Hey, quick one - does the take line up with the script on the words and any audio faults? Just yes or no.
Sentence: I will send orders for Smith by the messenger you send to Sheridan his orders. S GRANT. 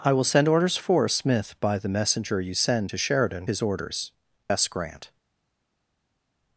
yes